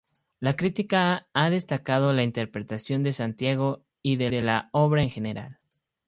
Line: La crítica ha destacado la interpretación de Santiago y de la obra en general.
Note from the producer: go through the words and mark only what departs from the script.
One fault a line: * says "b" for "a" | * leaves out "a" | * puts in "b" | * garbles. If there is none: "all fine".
* puts in "de"